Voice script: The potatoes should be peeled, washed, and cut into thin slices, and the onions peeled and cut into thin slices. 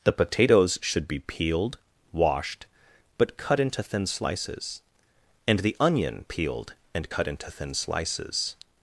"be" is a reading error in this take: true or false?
false